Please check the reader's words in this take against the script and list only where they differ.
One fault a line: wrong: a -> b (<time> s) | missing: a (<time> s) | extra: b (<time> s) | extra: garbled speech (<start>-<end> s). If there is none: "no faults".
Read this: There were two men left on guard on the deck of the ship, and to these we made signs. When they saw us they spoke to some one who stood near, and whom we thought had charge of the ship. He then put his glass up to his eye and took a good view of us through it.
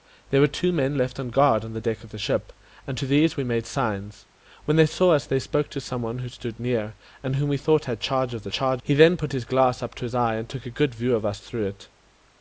wrong: ship -> charge (8.5 s)